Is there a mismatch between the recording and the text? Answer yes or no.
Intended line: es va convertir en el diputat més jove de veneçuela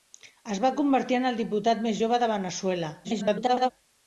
yes